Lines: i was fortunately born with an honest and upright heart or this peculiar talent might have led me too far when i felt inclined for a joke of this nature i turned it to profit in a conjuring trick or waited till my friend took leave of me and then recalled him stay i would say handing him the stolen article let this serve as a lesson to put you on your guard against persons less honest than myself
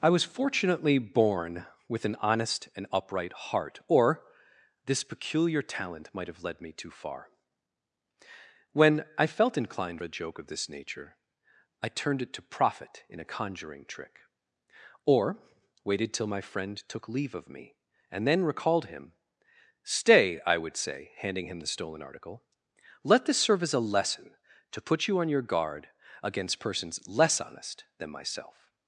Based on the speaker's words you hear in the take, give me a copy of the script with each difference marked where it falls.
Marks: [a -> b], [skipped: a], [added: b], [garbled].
i was fortunately born with an honest and upright heart or this peculiar talent might have led me too far when i felt inclined [skipped: for] a joke of this nature i turned it to profit in a conjuring trick or waited till my friend took leave of me and then recalled him stay i would say handing him the stolen article let this serve as a lesson to put you on your guard against persons less honest than myself